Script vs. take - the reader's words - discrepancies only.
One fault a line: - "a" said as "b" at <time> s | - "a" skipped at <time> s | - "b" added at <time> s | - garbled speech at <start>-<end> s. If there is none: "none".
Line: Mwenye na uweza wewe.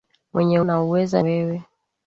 none